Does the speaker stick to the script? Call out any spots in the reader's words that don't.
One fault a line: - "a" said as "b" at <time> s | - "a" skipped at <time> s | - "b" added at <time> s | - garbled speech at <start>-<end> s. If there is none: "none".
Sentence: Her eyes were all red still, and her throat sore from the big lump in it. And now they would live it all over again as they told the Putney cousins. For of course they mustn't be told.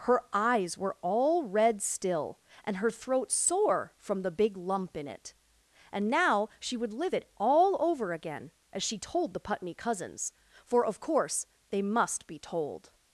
- "they" said as "she" at 6.6 s
- "they" said as "she" at 8.8 s
- "mustn't" said as "must" at 11.8 s